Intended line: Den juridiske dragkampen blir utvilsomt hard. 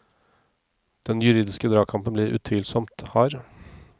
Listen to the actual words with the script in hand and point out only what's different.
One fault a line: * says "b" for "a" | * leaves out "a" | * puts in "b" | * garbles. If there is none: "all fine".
all fine